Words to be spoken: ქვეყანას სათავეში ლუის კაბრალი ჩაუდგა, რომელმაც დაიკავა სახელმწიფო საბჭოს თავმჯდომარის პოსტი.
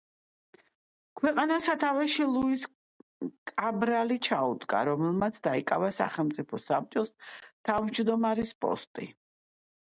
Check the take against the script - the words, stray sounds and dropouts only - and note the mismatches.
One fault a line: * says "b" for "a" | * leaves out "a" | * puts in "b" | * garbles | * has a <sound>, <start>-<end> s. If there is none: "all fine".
all fine